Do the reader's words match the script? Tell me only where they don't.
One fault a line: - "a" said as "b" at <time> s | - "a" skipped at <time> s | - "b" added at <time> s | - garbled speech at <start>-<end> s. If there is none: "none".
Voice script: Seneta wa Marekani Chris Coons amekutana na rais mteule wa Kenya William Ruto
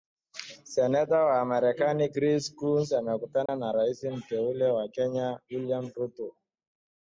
none